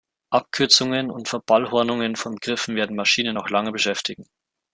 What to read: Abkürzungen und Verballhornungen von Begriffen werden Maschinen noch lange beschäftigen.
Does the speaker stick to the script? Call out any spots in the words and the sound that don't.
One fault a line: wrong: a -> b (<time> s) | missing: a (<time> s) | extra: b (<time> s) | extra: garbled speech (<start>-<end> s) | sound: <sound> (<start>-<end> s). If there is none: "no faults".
no faults